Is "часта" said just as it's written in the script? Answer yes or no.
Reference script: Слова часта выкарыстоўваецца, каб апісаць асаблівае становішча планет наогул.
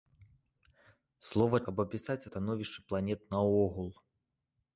no